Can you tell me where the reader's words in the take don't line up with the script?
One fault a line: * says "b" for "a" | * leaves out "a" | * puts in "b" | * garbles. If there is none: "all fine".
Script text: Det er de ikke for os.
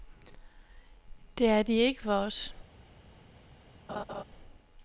all fine